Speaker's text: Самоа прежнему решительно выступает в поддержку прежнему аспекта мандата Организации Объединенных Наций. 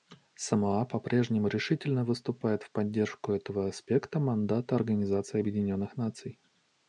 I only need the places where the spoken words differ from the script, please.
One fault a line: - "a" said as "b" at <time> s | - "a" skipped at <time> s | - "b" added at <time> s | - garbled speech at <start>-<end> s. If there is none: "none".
- "по" added at 0.8 s
- "прежнему" said as "этого" at 3.3 s